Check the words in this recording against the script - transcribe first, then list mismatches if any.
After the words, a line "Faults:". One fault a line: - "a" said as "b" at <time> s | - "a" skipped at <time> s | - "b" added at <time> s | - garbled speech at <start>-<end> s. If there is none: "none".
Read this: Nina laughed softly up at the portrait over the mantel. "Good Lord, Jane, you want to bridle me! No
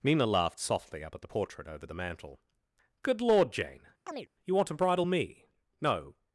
Nina laughed softly up at the portrait over the mantel. "Good Lord, Jane, you want to bridle me! No
Faults:
none